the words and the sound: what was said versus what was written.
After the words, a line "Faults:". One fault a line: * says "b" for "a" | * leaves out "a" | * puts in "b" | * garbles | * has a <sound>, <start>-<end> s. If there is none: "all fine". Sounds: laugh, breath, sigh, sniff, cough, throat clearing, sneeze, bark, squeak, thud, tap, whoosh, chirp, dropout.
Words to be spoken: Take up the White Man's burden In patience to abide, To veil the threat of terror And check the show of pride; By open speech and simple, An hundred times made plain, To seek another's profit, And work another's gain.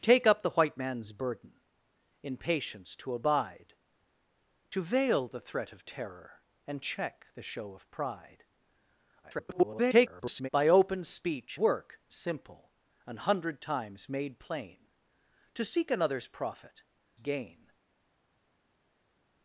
Take up the White Man's burden In patience to abide, To veil the threat of terror And check the show of pride; [garbled] By open speech work simple, An hundred times made plain, To seek another's profit, Gain.
Faults:
* garbles
* says "work" for "and"
* leaves out "And work another's"